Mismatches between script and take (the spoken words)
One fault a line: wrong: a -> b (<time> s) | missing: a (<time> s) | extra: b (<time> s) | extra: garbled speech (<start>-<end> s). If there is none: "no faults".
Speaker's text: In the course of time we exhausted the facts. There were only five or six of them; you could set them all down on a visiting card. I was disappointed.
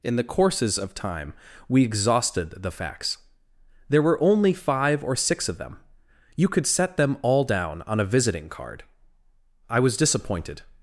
wrong: course -> courses (0.2 s)